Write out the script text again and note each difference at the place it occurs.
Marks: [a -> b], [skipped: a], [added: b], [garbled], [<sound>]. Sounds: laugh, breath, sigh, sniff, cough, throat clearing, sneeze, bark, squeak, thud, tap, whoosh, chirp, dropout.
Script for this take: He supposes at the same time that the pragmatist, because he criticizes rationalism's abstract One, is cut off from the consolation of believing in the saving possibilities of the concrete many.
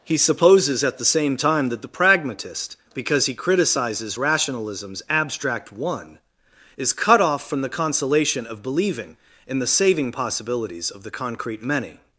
He supposes at the same time that the pragmatist, because he criticizes rationalism's abstract One, is cut off from the consolation of believing in the saving possibilities of the concrete many.